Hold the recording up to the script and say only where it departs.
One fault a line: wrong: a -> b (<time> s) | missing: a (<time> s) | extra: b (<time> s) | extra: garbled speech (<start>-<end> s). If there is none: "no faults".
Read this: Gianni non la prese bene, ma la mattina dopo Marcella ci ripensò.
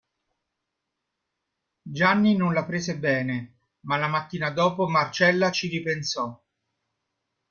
no faults